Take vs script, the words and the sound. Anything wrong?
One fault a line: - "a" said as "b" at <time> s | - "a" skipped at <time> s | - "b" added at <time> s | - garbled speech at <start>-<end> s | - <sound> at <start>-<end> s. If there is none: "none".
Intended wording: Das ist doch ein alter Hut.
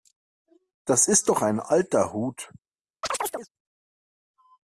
- chirp at 3.0-3.5 s